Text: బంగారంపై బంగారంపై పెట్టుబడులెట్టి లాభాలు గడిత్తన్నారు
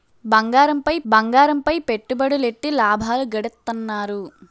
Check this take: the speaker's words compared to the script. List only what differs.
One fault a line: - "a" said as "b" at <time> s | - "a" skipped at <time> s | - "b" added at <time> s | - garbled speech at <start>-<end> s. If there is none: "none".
none